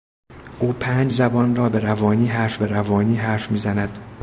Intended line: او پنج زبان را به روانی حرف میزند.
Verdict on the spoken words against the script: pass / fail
fail